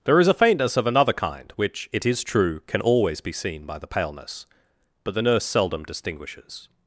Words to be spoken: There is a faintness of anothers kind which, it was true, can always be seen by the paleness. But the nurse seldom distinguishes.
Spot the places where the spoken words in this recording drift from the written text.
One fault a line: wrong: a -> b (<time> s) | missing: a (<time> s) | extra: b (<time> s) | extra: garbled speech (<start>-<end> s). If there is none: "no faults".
wrong: anothers -> another (0.9 s)
wrong: was -> is (2.1 s)